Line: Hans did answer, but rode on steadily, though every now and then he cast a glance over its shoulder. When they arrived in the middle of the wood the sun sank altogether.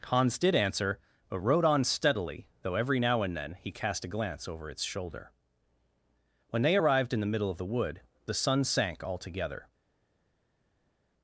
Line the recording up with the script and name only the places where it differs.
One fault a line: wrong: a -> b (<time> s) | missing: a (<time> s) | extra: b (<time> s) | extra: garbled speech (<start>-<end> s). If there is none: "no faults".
no faults